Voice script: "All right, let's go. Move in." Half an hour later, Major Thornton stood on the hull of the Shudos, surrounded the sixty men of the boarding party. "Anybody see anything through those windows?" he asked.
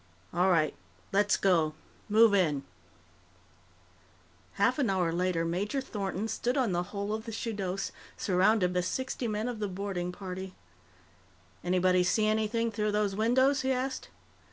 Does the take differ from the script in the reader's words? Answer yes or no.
no